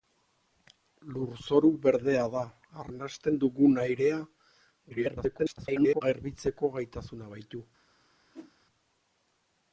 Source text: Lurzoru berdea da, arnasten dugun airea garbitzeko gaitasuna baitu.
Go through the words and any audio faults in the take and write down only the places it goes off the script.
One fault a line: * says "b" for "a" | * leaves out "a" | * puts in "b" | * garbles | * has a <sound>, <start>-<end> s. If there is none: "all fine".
* garbles
* has a whoosh, 8.3-8.5 s